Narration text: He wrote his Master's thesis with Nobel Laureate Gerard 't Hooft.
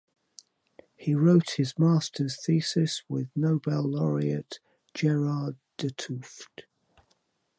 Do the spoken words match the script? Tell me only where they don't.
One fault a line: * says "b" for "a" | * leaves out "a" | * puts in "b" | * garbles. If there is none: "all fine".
all fine